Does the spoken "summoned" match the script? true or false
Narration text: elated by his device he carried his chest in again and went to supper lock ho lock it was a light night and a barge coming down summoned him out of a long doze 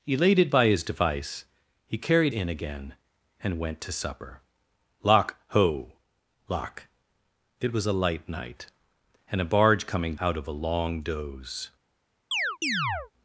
false